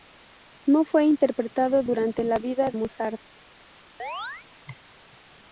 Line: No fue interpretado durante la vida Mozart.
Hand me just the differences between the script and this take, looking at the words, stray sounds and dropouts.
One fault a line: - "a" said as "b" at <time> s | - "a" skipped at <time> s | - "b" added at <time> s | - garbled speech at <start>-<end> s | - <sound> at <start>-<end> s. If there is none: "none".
- chirp at 4.0-4.5 s